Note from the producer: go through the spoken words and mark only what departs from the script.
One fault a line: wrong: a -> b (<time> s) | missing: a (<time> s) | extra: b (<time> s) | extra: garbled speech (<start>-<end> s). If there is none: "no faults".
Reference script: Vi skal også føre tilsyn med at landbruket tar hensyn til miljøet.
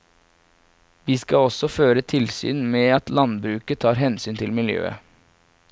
no faults